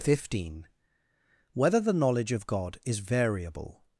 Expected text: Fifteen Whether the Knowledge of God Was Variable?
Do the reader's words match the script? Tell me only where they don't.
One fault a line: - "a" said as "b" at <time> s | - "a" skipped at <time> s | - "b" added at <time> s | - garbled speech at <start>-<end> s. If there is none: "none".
- "Was" said as "Is" at 2.8 s